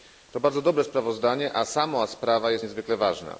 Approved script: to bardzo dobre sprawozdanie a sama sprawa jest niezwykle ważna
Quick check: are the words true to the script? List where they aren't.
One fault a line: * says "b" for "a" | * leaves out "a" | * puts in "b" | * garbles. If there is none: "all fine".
all fine